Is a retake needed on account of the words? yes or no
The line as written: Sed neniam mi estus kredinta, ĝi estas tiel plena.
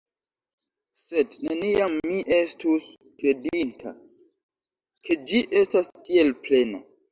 yes